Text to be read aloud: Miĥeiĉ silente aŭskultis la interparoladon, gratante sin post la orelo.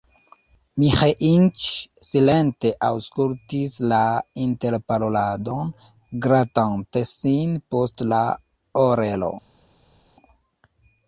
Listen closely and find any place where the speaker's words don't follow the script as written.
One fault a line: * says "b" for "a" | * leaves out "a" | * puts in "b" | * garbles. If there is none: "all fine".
all fine